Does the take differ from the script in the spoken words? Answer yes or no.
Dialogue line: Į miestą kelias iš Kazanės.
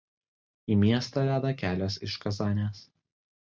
yes